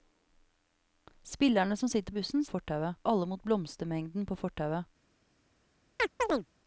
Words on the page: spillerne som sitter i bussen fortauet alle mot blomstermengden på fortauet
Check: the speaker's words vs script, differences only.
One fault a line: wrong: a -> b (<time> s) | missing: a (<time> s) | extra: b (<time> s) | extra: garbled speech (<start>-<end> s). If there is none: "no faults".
no faults